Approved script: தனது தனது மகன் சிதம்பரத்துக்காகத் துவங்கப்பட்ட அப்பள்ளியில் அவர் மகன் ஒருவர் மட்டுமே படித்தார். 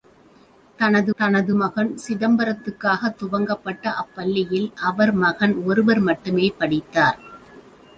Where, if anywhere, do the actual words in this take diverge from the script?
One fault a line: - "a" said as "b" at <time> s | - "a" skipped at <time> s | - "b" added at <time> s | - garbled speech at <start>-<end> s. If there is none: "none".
none